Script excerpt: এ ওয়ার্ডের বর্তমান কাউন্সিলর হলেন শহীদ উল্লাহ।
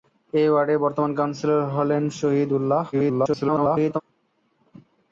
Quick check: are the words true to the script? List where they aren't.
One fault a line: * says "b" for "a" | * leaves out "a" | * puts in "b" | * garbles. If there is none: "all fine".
* garbles